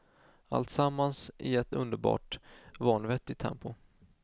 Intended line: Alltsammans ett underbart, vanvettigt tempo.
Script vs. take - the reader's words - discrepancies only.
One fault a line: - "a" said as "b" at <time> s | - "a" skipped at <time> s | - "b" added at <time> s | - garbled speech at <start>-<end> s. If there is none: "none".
- "i" added at 1.4 s